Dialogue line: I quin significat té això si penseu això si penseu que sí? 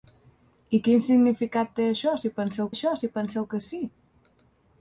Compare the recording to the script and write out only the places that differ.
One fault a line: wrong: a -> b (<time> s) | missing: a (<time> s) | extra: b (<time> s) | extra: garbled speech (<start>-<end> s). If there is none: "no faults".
no faults